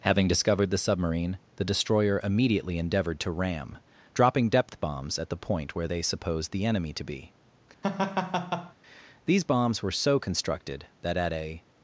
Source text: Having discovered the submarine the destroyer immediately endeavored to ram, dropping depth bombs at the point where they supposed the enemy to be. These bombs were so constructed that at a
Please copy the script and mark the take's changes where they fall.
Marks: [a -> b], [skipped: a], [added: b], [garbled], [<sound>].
Having discovered the submarine the destroyer immediately endeavored to ram, dropping depth bombs at the point where they supposed the enemy to be. [laugh] These bombs were so constructed that at a